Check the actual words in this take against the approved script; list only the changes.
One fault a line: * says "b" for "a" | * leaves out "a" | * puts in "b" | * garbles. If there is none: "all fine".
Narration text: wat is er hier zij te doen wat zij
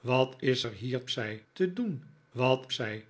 all fine